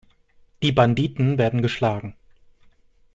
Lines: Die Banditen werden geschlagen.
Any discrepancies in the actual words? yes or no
no